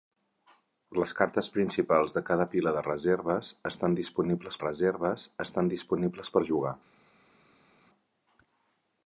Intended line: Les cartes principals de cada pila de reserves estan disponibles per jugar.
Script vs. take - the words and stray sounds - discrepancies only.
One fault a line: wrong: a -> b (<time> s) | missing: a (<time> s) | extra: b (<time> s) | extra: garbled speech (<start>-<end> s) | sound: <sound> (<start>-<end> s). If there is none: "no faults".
extra: reserves estan disponibles (4.6 s)